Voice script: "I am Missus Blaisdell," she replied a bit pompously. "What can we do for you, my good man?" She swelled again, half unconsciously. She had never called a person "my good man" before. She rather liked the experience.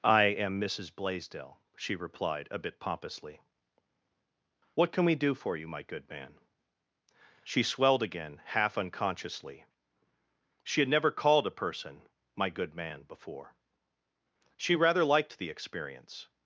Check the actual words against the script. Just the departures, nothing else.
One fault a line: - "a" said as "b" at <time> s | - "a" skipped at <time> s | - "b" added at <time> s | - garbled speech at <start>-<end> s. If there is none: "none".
none